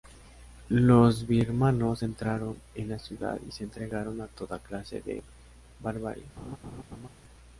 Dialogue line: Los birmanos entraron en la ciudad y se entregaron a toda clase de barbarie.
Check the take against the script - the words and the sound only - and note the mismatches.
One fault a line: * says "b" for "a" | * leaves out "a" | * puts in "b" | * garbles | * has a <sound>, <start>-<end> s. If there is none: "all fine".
* has a laugh, 6.4-7.1 s